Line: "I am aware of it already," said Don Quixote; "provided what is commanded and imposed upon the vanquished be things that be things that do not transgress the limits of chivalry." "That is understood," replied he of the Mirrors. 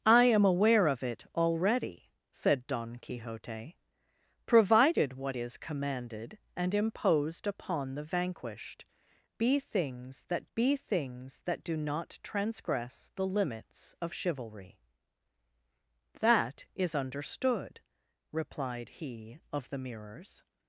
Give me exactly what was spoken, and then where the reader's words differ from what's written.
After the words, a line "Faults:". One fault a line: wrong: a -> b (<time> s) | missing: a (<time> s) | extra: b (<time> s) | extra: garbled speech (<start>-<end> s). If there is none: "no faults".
"I am aware of it already," said Don Quixote; "provided what is commanded and imposed upon the vanquished be things that be things that do not transgress the limits of chivalry." "That is understood," replied he of the Mirrors.
Faults:
no faults